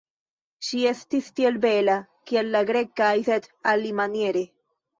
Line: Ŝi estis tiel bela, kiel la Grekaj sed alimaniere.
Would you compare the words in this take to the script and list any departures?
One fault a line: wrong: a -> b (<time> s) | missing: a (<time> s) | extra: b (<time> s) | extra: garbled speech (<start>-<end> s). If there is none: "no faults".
no faults